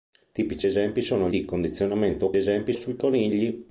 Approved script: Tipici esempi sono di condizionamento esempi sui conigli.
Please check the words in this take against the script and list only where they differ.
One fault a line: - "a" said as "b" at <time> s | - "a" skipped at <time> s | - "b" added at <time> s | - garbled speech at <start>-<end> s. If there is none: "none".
none